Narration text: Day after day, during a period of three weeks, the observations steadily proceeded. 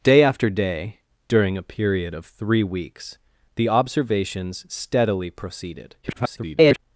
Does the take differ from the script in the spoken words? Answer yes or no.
yes